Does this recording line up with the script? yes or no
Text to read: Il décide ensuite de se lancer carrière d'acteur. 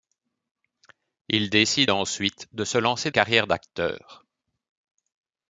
yes